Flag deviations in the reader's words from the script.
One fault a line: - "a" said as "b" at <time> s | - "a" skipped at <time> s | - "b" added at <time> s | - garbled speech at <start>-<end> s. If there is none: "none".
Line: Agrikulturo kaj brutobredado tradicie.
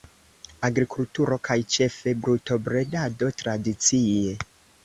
- "ĉefe" added at 1.8 s